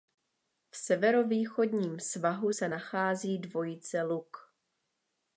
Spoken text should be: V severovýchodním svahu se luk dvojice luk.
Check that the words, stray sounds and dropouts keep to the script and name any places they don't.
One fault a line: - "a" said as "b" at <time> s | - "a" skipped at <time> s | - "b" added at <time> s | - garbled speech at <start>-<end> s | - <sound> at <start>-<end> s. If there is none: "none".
- "luk" said as "nachází" at 2.7 s